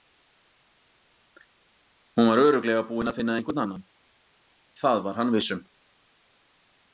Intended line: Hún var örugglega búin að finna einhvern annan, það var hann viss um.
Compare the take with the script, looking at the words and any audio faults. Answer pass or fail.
pass